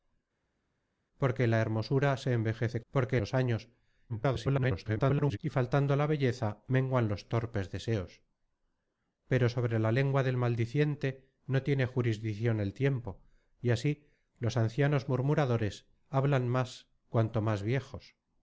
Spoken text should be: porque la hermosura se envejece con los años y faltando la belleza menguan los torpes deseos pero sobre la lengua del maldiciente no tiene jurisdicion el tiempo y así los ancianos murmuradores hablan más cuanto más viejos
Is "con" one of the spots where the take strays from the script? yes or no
yes